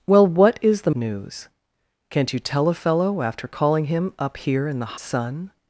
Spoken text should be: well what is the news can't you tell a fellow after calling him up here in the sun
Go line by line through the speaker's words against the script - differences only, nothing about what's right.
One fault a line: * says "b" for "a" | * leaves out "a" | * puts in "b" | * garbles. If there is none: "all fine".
all fine